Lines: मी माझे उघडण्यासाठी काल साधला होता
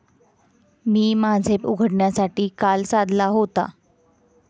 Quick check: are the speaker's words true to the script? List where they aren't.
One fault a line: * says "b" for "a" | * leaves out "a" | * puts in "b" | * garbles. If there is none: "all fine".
all fine